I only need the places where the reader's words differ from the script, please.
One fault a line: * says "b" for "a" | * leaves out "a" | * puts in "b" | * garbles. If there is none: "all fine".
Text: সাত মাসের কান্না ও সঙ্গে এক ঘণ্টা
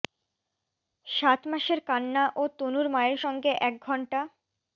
* puts in "তনুর মায়ের"